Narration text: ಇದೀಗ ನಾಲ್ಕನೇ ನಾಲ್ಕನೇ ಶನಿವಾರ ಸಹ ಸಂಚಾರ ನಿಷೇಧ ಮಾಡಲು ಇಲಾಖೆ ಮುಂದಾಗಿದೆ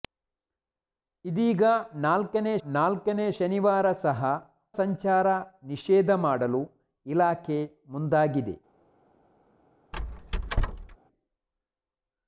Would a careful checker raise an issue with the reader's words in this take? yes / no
no